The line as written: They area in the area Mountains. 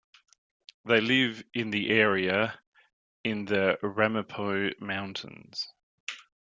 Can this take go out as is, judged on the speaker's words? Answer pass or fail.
fail